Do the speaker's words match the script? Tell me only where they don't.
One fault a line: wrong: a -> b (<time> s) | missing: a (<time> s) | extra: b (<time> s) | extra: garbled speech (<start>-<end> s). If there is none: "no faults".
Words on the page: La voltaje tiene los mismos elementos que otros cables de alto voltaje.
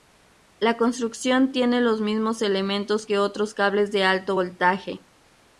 wrong: voltaje -> construcción (0.8 s)